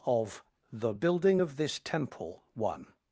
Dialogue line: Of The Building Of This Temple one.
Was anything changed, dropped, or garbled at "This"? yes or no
no